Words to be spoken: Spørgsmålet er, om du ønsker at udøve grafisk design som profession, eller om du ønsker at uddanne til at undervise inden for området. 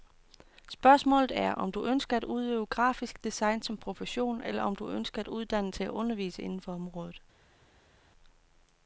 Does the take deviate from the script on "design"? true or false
false